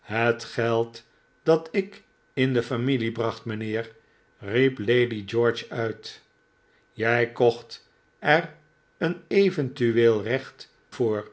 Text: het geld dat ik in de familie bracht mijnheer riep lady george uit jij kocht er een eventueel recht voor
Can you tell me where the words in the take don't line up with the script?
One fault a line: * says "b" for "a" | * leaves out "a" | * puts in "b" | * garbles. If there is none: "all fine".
all fine